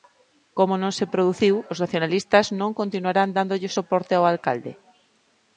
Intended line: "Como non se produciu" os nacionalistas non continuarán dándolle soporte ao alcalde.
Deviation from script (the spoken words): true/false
false